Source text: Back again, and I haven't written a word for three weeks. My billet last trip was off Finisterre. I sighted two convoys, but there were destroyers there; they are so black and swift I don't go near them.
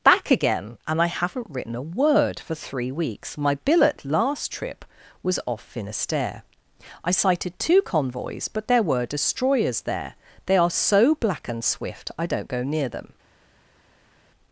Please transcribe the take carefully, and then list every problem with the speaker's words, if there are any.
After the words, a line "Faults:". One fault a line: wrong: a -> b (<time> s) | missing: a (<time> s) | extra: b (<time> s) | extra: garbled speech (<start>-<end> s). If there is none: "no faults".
Back again, and I haven't written a word for three weeks. My billet last trip was off Finisterre. I sighted two convoys, but there were destroyers there; they are so black and swift I don't go near them.
Faults:
no faults